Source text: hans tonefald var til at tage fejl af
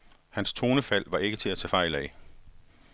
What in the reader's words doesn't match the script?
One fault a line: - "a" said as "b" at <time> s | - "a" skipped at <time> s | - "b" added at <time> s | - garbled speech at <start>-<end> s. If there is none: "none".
- "ikke" added at 1.2 s